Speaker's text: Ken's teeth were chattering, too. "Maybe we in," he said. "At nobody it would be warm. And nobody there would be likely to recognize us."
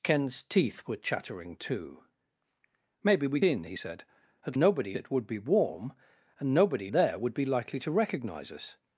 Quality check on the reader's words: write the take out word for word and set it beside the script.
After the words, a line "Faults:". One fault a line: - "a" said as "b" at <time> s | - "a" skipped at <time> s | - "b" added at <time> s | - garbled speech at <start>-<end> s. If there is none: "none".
Ken's teeth were chattering, too. "Maybe we in," he said. "At nobody it would be warm. And nobody there would be likely to recognize us."
Faults:
none